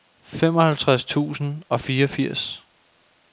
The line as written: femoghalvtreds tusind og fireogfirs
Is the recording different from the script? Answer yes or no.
no